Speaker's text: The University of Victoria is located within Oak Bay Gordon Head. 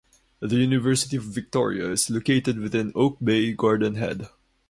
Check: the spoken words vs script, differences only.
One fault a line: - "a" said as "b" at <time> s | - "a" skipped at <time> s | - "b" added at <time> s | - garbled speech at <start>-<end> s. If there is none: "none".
none